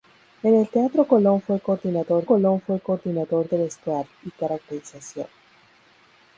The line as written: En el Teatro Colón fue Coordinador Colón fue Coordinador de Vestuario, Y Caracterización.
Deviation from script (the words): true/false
false